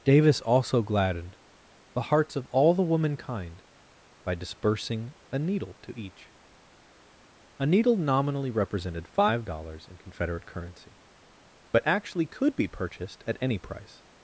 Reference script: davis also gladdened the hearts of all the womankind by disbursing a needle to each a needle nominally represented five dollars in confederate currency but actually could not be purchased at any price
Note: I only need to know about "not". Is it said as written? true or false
false